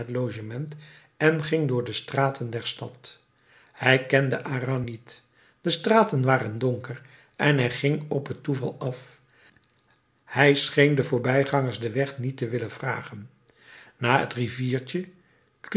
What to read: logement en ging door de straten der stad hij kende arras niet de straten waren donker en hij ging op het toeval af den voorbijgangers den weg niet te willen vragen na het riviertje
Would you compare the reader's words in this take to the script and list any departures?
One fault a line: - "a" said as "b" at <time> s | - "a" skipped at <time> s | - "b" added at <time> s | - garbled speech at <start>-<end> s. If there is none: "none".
- "hij scheen" added at 10.2 s